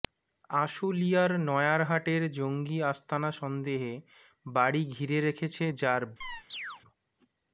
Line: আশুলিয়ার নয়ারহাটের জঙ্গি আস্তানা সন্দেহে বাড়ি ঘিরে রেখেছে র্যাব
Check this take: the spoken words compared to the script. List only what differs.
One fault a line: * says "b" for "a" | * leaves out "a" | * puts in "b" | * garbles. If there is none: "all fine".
all fine